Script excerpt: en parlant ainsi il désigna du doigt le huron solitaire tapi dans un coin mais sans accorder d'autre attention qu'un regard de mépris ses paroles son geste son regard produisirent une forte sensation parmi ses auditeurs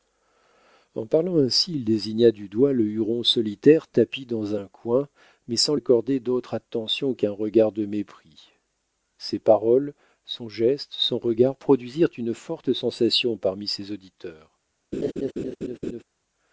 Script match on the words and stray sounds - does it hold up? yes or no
no